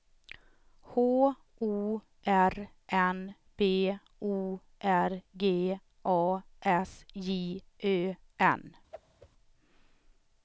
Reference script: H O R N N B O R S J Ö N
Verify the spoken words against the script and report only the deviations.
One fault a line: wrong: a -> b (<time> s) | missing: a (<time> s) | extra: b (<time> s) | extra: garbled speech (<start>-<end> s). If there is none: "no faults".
missing: N (3.4 s)
extra: G A (5.4 s)